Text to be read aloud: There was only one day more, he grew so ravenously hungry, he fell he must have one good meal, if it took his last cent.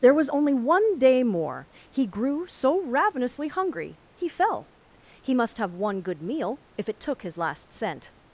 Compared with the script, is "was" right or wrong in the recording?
right